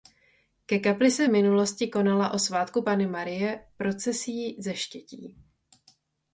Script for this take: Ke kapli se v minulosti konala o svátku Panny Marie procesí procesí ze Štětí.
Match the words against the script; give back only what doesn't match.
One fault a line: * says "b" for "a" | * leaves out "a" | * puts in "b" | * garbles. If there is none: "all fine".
* leaves out "procesí"